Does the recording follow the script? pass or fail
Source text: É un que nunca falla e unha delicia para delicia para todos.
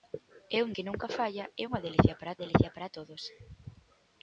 pass